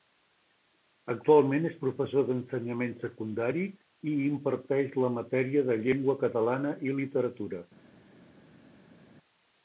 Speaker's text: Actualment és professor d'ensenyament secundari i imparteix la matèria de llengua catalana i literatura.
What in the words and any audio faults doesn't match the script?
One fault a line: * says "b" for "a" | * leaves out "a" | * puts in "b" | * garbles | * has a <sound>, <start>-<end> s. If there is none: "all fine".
all fine